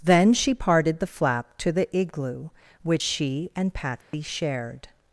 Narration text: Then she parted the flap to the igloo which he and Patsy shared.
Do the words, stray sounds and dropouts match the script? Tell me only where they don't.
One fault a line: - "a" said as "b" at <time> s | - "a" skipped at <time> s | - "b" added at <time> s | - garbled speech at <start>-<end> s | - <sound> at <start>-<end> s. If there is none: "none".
- "he" said as "she" at 3.0 s
- dropout at 4.0-4.1 s